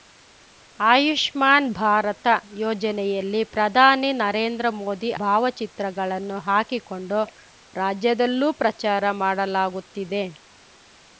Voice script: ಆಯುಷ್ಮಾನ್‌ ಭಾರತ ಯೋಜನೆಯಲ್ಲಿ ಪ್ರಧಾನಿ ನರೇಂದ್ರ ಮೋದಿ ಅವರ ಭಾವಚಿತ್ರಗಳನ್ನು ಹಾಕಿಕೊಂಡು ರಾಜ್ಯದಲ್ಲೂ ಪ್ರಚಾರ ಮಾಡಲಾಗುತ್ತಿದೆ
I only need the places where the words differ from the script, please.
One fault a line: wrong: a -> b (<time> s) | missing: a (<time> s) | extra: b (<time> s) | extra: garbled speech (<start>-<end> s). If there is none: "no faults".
missing: ಅವರ (5.1 s)